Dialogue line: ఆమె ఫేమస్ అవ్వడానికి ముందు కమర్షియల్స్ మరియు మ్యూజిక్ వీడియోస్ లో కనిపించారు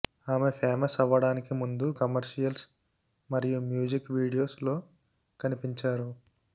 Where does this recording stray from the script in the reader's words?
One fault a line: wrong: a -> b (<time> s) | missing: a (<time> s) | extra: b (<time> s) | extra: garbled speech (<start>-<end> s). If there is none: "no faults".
no faults